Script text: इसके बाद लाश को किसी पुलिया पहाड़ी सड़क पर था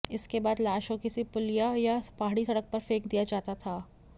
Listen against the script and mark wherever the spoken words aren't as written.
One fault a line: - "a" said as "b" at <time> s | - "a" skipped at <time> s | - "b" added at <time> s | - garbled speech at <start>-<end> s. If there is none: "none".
- "या" added at 1.8 s
- "फेंक दिया जाता" added at 2.8 s